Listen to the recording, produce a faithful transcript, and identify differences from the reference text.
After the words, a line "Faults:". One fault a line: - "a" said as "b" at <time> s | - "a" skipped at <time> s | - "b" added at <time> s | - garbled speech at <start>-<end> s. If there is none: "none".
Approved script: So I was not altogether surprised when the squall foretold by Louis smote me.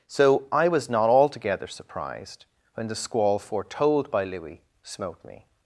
So I was not altogether surprised when the squall foretold by Louis smote me.
Faults:
none